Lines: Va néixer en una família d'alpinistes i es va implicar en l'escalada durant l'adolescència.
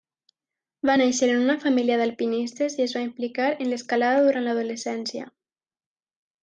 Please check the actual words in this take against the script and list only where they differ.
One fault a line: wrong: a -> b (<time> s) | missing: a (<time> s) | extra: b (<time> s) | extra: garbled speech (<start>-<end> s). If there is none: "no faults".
no faults